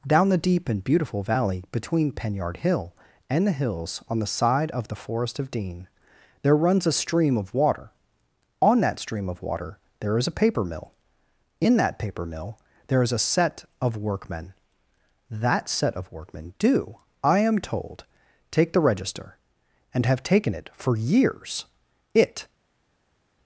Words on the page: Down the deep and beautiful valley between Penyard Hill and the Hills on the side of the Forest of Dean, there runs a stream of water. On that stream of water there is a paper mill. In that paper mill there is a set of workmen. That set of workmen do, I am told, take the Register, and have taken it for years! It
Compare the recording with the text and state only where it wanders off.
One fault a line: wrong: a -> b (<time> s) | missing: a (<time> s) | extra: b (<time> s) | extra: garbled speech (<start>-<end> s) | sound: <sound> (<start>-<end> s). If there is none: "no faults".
no faults